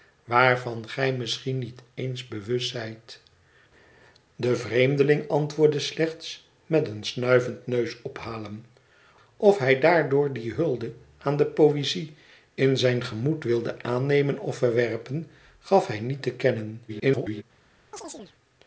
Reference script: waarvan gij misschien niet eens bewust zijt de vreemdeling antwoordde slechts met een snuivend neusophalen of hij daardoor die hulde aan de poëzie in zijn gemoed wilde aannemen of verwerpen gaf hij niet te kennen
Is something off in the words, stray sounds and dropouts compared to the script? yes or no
yes